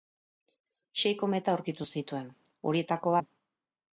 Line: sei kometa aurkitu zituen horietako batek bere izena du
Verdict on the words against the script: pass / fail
fail